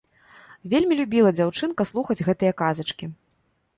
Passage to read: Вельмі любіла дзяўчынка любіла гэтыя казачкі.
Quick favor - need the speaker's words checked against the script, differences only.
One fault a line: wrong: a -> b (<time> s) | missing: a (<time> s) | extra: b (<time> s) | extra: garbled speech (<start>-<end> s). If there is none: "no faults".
wrong: любіла -> слухаць (1.9 s)